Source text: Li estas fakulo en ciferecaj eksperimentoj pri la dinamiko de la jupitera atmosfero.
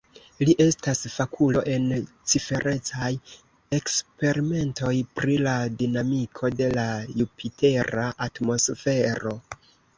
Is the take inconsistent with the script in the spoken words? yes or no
no